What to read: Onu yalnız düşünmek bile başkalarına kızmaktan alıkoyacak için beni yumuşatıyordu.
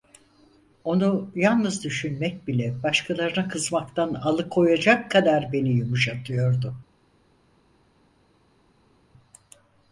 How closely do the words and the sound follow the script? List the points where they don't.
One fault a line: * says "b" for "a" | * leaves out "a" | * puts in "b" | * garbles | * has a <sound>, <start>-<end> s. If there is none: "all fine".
* says "kadar" for "için"